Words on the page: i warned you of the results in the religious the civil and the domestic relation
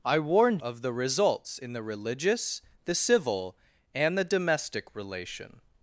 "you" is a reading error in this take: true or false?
true